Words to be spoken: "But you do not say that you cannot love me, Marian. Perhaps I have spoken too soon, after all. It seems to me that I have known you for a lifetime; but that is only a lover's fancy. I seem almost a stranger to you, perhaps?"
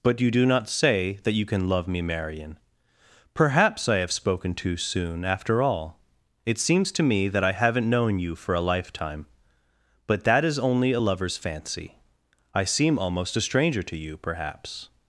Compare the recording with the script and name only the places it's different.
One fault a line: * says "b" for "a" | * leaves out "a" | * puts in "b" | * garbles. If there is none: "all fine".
* says "can" for "cannot"
* says "haven't" for "have"